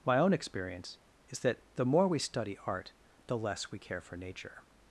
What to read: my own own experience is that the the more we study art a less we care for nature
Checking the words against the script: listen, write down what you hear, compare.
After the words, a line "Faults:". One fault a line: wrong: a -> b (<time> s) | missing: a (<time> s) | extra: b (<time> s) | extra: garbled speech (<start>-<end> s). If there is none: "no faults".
my own experience is that the more we study art the less we care for nature
Faults:
missing: own (0.3 s)
missing: the (1.9 s)
wrong: a -> the (3.3 s)